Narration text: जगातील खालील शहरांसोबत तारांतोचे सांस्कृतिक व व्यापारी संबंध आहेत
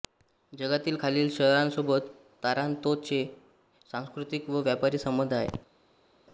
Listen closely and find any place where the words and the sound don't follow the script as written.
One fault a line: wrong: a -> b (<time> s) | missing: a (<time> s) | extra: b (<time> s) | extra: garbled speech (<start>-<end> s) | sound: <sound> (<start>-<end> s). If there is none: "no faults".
no faults